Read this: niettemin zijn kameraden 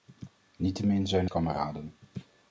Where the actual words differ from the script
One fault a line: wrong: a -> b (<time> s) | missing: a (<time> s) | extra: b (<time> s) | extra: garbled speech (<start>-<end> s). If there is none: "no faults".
no faults